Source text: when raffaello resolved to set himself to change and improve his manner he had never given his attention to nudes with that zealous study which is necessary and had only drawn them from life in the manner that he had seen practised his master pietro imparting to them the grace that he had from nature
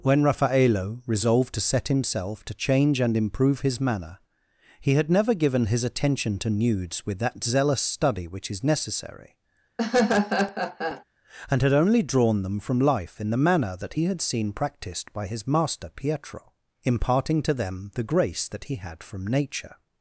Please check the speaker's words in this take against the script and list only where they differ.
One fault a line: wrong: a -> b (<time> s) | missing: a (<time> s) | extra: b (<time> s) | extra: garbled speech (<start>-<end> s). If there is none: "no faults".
extra: by (15.1 s)